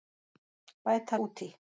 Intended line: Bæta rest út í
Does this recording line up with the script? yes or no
no